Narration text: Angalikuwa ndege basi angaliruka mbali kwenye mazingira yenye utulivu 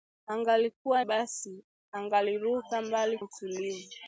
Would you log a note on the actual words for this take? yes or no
yes